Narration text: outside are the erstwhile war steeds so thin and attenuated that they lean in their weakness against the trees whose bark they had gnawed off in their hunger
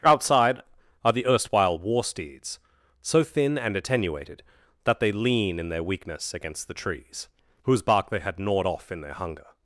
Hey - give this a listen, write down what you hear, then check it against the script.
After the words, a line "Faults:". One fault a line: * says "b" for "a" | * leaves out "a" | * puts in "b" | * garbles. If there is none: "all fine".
outside are the erstwhile war steeds so thin and attenuated that they lean in their weakness against the trees whose bark they had gnawed off in their hunger
Faults:
all fine